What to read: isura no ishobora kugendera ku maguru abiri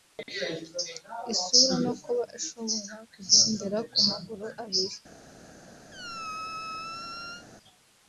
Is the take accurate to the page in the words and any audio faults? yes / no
no